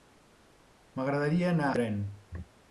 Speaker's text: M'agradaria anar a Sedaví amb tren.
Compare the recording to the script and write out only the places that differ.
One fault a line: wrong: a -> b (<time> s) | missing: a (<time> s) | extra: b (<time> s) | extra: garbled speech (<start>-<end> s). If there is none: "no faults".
missing: a Sedaví amb (1.7 s)